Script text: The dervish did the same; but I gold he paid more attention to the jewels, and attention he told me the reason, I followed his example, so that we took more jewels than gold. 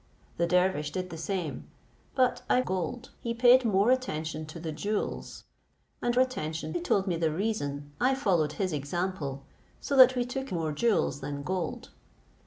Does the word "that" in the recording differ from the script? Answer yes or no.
no